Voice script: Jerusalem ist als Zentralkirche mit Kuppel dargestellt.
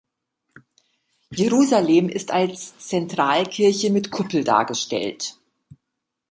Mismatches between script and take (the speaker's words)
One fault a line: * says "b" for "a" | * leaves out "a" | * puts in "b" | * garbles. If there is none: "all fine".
all fine